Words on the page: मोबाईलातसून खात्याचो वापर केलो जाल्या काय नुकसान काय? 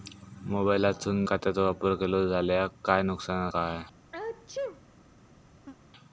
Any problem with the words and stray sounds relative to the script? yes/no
yes